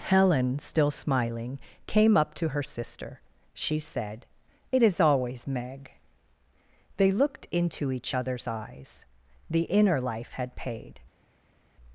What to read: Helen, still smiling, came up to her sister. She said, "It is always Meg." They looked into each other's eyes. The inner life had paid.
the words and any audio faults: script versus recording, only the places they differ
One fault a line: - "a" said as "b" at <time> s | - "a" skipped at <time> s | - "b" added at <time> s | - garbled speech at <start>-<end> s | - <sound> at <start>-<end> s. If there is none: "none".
none